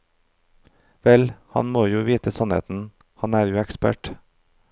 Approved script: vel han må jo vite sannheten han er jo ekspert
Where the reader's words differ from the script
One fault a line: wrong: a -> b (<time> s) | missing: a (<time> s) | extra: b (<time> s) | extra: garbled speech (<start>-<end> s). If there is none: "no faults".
no faults